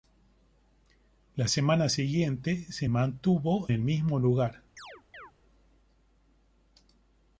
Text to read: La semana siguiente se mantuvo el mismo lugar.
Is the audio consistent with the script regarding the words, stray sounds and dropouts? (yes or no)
no